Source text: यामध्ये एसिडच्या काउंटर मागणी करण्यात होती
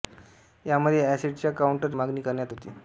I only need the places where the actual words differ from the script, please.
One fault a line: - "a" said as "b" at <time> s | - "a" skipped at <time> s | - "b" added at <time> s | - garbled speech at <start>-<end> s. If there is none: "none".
none